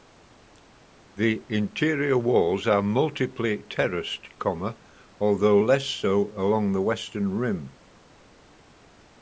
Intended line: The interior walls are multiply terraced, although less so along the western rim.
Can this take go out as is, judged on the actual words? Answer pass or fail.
pass